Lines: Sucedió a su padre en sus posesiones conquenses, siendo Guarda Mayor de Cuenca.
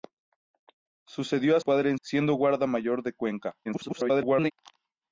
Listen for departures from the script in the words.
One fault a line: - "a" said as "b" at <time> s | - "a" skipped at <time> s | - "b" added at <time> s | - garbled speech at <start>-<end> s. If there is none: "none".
- "su" skipped at 1.6 s
- "sus posesiones conquenses" skipped at 2.0 s
- garbled speech at 3.7-4.5 s